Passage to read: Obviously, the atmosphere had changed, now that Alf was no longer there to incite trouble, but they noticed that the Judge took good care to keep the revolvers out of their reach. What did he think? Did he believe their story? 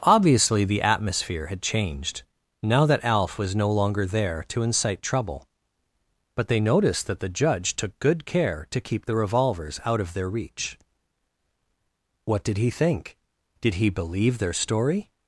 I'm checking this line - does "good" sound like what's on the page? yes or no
yes